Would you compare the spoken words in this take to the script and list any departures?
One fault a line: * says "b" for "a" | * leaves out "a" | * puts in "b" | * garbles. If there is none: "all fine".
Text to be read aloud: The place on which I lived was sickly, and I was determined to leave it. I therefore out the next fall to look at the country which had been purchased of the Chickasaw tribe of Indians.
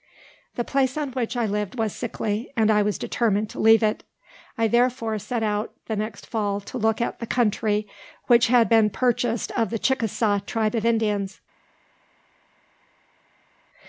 * puts in "set"